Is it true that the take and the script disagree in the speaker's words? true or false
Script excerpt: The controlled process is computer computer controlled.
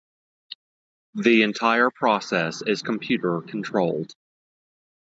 true